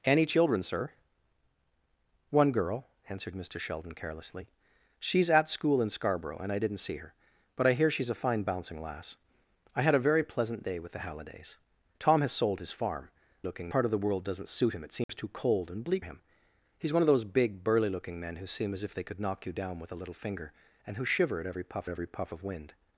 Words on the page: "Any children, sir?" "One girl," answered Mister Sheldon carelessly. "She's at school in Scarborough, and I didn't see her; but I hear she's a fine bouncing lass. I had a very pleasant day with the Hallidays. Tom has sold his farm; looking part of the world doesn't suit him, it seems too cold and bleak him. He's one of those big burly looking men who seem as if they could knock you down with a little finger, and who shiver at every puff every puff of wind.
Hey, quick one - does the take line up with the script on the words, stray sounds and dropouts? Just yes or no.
no